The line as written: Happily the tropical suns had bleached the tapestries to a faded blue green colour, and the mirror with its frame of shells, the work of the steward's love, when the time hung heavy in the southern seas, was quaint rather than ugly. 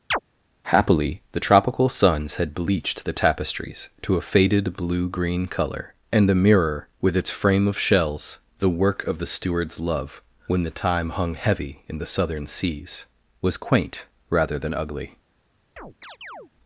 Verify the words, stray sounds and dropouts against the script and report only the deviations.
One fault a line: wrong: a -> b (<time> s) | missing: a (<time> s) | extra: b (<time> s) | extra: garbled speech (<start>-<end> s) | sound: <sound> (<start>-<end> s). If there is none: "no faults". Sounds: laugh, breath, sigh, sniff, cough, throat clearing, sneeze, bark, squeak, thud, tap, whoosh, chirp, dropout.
sound: chirp (0.1-0.2 s)
sound: chirp (15.8-16.5 s)